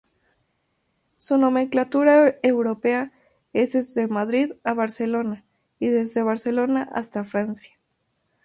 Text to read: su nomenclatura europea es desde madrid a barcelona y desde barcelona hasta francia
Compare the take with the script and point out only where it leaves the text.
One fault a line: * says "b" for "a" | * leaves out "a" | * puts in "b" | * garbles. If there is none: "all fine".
all fine